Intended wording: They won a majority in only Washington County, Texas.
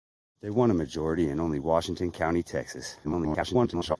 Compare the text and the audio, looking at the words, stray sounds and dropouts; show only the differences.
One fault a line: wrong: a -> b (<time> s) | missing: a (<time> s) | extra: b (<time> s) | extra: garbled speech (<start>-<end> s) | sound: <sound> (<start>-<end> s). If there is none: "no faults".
extra: garbled speech (3.0-4.0 s)